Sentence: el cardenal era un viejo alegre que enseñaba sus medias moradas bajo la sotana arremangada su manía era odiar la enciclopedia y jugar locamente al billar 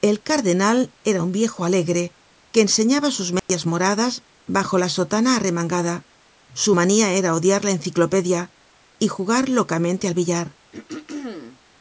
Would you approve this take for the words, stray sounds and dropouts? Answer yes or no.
no